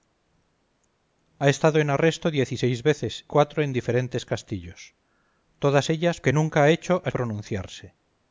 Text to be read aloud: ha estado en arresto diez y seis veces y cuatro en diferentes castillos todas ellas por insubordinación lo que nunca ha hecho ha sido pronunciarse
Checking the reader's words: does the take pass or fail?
fail